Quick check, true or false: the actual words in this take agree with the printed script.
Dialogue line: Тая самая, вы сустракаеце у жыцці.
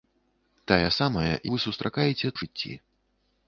true